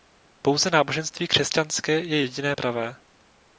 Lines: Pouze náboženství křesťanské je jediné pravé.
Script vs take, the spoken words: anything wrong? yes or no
no